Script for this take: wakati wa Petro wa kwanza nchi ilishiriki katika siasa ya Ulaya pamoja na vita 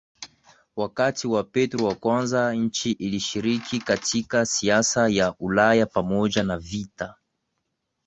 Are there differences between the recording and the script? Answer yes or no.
no